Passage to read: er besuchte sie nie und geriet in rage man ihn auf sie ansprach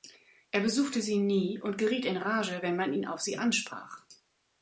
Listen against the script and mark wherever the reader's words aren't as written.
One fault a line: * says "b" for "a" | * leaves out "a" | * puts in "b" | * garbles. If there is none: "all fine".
* puts in "wenn"